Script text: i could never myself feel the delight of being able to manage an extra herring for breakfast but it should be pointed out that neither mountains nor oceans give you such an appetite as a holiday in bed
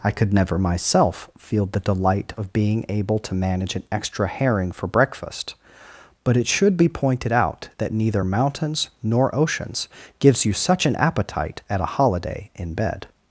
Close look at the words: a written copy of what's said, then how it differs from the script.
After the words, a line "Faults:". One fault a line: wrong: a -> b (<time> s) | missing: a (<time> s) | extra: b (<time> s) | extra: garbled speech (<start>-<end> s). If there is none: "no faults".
i could never myself feel the delight of being able to manage an extra herring for breakfast but it should be pointed out that neither mountains nor oceans gives you such an appetite at a holiday in bed
Faults:
wrong: give -> gives (10.2 s)
wrong: as -> at (11.7 s)